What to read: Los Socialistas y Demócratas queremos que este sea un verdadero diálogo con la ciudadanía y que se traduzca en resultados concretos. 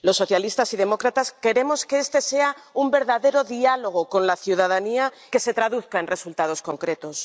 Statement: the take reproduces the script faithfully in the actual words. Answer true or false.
false